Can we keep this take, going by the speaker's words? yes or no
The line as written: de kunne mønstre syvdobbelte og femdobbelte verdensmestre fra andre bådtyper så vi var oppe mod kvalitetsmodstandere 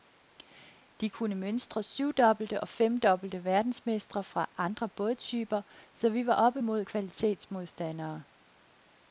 yes